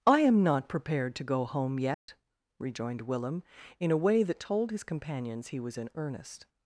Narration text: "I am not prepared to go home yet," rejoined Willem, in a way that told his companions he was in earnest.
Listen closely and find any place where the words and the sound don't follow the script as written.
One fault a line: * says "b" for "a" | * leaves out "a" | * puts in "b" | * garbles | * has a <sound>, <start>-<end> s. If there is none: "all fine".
* has a dropout, 1.9-2.1 s